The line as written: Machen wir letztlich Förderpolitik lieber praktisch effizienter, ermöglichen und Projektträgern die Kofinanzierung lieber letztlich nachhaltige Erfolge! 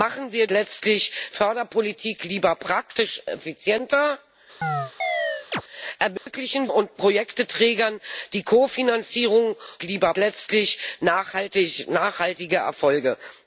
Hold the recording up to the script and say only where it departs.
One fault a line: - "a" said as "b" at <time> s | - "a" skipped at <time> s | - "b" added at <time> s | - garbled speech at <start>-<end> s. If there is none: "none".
none